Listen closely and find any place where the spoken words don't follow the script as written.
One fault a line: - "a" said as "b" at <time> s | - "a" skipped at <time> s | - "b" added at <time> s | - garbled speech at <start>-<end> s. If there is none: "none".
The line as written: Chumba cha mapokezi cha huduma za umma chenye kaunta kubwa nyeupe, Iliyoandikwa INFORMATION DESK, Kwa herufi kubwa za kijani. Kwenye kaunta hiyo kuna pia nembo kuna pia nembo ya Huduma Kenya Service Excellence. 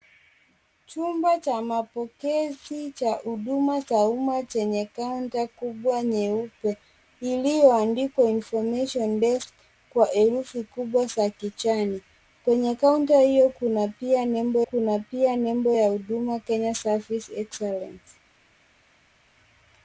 none